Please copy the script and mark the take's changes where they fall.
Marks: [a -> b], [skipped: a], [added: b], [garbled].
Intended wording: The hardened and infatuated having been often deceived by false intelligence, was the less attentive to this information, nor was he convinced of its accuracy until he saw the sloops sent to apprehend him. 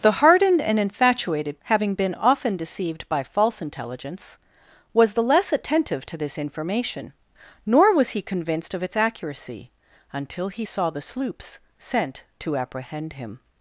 The hardened and infatuated having been often deceived by false intelligence, was the less attentive to this information, nor was he convinced of its accuracy until he saw the sloops sent to apprehend him.